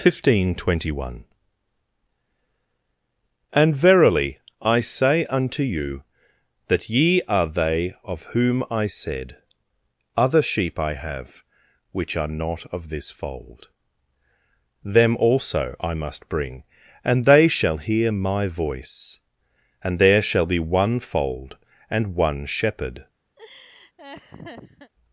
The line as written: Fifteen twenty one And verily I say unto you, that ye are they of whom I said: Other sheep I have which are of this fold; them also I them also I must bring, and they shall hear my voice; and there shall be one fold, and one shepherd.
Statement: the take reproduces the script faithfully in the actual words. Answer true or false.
false